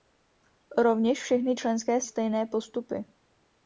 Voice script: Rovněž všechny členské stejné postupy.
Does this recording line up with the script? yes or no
yes